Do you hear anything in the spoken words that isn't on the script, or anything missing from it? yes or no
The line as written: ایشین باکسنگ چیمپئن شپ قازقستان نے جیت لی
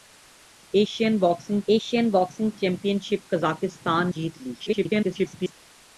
yes